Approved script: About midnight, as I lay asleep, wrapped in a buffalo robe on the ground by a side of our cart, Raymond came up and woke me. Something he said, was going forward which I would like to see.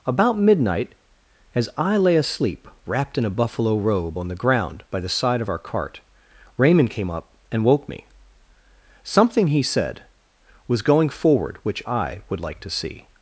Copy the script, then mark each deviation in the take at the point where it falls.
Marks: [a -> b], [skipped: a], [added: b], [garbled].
About midnight, as I lay asleep, wrapped in a buffalo robe on the ground by [a -> the] side of our cart, Raymond came up and woke me. Something he said, was going forward which I would like to see.